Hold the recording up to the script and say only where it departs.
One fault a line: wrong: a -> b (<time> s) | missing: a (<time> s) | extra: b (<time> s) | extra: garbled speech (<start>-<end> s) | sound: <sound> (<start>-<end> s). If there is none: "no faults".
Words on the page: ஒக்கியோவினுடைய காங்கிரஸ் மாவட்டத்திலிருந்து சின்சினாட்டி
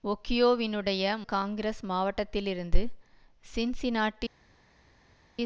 no faults